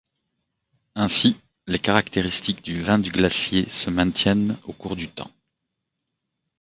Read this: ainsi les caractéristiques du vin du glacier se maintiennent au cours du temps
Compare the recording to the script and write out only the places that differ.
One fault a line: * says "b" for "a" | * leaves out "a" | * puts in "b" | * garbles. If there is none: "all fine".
all fine